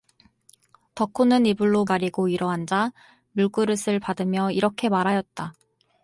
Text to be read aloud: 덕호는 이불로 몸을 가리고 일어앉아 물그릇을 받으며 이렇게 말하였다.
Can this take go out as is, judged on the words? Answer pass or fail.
fail